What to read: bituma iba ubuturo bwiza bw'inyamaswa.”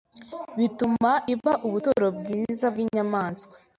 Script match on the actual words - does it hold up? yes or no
yes